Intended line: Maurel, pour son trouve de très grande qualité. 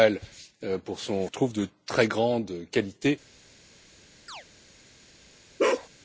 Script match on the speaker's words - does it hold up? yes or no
yes